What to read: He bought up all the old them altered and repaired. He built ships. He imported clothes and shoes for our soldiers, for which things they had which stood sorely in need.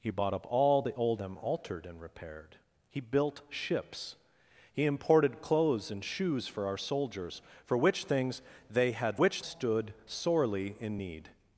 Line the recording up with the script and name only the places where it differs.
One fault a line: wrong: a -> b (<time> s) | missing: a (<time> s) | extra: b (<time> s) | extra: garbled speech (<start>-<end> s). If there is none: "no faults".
no faults